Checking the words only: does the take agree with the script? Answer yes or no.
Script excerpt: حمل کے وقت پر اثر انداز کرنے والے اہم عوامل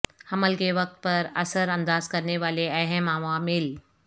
yes